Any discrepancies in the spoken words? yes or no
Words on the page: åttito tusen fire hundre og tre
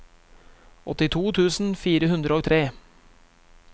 no